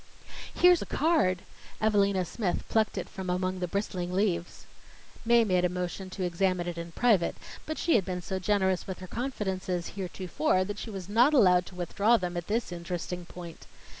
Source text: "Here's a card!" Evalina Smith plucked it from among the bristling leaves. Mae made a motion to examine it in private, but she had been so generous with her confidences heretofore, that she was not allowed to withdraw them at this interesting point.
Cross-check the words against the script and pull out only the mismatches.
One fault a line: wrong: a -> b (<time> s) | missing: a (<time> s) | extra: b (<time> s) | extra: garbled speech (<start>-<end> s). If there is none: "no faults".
no faults